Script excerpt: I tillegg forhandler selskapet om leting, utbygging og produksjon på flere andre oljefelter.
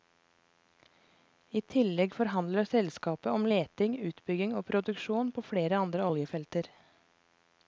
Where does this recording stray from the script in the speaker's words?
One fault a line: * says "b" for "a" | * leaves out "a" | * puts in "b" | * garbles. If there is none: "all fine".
all fine